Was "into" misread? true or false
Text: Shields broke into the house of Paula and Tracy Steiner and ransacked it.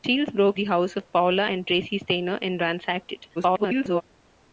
true